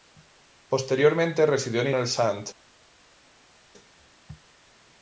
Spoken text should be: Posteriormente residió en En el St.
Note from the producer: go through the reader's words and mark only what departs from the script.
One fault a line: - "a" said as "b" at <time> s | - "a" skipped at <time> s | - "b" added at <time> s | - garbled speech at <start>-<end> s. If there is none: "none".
none